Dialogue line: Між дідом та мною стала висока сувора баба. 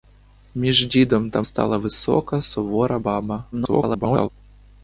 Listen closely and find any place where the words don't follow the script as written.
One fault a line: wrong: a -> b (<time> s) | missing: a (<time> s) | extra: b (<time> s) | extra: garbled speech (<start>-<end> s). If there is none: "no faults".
missing: мною (1.4 s)
extra: garbled speech (3.5-4.3 s)